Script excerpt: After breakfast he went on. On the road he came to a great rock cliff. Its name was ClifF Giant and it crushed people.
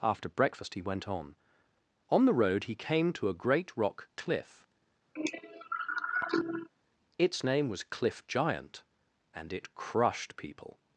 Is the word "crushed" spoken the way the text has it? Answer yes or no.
yes